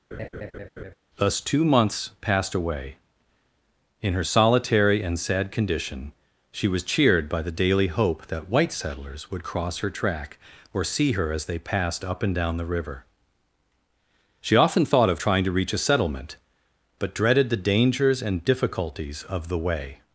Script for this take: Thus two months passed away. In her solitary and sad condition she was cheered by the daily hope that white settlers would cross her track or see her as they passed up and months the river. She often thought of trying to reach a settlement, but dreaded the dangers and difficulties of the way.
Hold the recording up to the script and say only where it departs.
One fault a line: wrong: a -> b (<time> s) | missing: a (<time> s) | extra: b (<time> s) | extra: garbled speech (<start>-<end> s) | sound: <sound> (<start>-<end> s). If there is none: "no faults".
sound: laugh (0.1-0.9 s)
wrong: months -> down (12.3 s)